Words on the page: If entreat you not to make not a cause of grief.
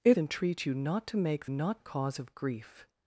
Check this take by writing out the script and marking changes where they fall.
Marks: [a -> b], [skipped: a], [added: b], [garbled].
If entreat you not to make not a cause of grief.